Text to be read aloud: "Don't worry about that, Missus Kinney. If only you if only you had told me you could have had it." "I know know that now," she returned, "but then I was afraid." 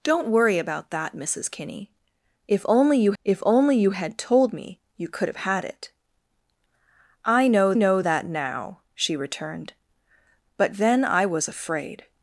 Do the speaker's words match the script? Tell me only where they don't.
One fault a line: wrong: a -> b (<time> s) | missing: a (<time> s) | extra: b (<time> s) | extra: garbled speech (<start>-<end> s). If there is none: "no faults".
no faults